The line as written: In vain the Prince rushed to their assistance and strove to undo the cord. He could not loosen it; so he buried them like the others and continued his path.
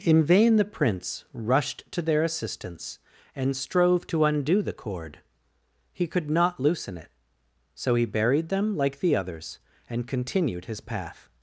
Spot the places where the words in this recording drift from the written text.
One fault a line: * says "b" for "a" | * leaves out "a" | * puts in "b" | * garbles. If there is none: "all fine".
all fine